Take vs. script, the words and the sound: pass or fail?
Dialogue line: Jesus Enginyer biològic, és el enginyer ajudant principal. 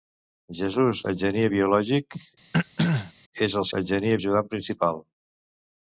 fail